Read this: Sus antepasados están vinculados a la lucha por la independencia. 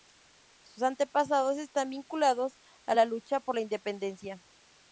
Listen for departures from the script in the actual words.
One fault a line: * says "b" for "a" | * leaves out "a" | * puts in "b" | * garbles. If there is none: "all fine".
all fine